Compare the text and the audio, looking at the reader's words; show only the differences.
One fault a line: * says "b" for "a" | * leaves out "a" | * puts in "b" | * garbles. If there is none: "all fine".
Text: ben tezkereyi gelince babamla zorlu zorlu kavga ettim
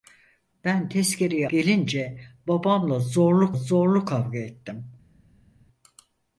all fine